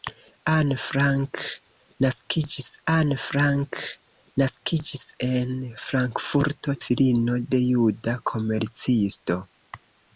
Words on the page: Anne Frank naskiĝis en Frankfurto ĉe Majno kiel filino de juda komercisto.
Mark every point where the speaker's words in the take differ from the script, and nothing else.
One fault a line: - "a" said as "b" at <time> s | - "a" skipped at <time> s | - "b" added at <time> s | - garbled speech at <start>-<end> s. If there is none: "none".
- "en Frankfurto ĉe Majno kiel" said as "anne Frank naskiĝis en Frankfurto" at 2.9 s